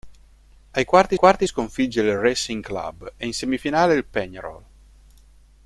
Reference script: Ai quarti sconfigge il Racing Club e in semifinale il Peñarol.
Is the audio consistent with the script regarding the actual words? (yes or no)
no